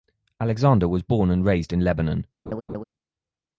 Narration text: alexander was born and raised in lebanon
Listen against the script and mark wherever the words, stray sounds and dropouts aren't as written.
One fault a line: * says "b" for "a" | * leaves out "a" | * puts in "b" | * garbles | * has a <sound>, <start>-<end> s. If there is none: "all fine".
* has a laugh, 2.5-2.8 s